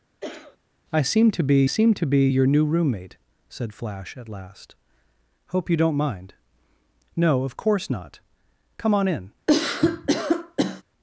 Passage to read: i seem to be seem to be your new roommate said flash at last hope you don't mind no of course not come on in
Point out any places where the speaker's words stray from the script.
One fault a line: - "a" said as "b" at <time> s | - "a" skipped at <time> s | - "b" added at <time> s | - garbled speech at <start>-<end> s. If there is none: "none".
none